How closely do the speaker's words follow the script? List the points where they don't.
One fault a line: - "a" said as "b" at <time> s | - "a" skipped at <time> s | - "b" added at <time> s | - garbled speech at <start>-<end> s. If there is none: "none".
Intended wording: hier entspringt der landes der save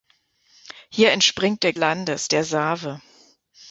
none